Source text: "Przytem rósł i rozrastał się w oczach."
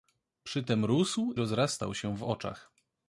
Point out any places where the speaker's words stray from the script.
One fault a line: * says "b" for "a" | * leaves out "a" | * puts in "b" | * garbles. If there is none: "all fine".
* leaves out "i"